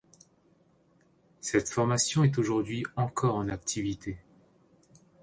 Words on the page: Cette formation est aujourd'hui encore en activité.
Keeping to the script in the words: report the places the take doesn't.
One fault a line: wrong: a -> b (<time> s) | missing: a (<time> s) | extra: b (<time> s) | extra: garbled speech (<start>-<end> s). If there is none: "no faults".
no faults